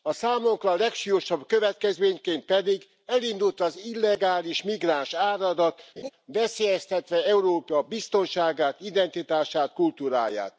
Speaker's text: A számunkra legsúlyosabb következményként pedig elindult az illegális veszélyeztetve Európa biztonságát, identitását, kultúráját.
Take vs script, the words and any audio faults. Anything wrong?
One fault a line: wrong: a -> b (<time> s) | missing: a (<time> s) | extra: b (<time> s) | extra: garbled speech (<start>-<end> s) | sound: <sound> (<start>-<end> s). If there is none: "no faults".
extra: migránsáradat (4.6 s)
sound: laugh (6.0-6.1 s)